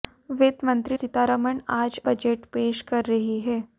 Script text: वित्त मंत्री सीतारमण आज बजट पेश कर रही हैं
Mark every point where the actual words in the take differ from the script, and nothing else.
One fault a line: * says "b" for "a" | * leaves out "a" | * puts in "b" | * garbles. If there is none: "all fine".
all fine